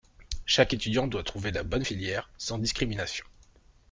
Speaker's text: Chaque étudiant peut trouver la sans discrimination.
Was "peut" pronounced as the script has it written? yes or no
no